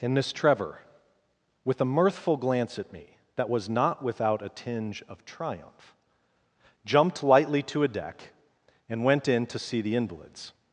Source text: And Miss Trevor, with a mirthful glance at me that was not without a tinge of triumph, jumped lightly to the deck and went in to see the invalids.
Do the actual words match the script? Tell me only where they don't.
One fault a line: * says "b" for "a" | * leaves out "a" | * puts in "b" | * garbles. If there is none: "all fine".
* says "a" for "the"